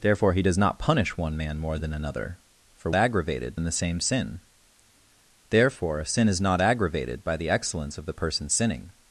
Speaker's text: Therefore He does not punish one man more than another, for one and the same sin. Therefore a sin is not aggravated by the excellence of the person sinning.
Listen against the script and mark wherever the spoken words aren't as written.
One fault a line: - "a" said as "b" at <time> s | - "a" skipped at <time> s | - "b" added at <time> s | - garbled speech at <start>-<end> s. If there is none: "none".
- "one" said as "aggravated" at 2.9 s